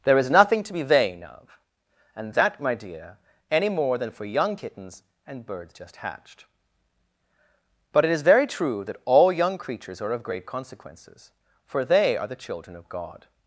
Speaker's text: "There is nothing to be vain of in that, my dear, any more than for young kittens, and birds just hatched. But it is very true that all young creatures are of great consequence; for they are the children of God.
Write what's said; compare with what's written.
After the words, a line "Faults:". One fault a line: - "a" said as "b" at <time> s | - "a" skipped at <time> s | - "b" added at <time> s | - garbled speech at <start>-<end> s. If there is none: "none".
"There is nothing to be vain of and that, my dear, any more than for young kittens, and birds just hatched. But it is very true that all young creatures are of great consequences; for they are the children of God.
Faults:
- "in" said as "and" at 2.1 s
- "consequence" said as "consequences" at 10.4 s